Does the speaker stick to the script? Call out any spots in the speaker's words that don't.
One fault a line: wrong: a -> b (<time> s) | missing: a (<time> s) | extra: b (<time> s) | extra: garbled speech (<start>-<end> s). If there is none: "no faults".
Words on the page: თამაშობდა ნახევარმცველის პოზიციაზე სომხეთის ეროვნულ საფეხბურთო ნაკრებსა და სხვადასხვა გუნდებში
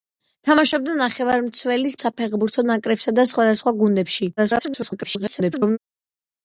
missing: პოზიციაზე სომხეთის ეროვნულ (2.0 s)
extra: garbled speech (4.4-5.8 s)